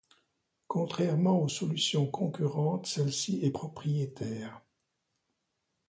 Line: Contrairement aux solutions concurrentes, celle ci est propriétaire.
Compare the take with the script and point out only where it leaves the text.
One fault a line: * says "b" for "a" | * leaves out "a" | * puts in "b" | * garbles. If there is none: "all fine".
all fine